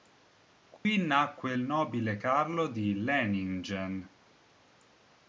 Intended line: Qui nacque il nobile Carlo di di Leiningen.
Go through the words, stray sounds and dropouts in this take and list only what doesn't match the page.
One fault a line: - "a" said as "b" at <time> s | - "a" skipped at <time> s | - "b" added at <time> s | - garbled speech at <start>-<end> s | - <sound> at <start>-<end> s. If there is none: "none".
- dropout at 0.8-0.9 s
- "di" skipped at 2.9 s